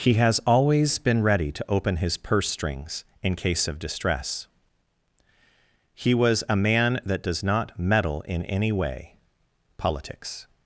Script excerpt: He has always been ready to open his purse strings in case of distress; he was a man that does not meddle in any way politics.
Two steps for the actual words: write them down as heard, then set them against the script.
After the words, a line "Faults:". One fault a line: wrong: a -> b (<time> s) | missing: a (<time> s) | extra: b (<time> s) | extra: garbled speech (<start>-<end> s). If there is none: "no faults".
He has always been ready to open his purse strings in case of distress; he was a man that does not meddle in any way politics.
Faults:
no faults